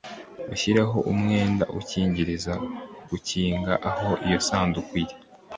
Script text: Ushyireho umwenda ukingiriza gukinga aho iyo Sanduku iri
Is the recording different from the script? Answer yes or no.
no